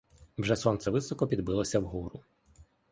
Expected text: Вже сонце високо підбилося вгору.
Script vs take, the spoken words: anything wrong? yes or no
no